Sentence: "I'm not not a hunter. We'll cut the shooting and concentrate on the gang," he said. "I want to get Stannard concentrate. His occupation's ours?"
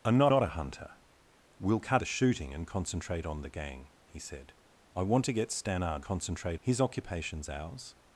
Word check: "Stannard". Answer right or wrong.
right